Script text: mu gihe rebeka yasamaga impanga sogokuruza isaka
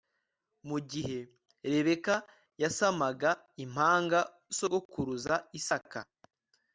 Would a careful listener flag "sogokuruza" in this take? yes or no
no